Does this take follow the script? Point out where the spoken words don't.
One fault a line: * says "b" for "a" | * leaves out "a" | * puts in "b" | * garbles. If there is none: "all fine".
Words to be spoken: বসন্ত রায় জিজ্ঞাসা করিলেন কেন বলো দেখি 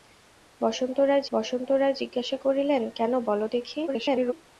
* puts in "বসন্ত রায়"
* garbles